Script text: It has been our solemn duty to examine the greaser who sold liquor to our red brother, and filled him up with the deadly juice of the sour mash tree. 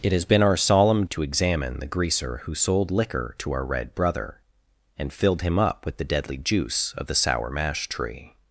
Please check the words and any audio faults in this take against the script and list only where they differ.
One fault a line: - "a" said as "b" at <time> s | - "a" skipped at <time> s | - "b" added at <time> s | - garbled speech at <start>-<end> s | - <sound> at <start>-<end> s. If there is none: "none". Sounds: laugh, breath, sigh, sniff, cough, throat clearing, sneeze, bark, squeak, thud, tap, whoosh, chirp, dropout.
- "duty" skipped at 1.1 s